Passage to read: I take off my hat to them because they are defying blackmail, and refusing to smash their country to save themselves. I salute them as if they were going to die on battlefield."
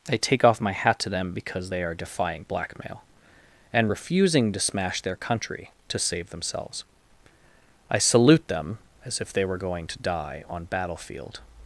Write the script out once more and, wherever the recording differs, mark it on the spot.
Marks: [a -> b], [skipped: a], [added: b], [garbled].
I take off my hat to them because they are defying blackmail, and refusing to smash their country to save themselves. I salute them as if they were going to die on battlefield."